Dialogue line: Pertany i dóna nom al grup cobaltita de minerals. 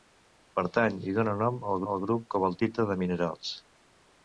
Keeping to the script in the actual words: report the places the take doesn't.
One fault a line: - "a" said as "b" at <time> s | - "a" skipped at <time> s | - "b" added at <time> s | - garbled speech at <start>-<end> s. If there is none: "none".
- "al" added at 1.9 s